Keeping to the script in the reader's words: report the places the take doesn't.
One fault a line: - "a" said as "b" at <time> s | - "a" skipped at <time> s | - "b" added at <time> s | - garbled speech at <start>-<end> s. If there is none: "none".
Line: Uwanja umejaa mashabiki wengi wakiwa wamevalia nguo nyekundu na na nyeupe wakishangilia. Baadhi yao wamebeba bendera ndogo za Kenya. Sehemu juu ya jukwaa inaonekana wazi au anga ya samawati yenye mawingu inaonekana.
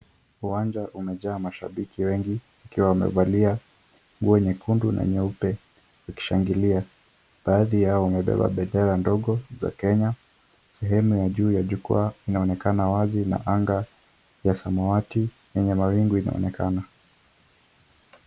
- "na" skipped at 5.0 s
- "ya" added at 11.2 s
- "au" said as "na" at 13.3 s